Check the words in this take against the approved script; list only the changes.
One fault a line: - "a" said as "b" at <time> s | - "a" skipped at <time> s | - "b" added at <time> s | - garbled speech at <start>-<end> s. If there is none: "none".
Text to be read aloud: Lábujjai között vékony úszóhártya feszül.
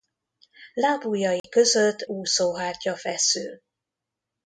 - "vékony" skipped at 2.1 s